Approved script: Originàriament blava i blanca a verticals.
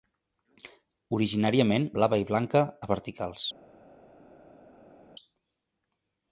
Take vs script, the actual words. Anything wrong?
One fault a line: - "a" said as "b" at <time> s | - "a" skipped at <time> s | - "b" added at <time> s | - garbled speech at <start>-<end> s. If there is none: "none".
none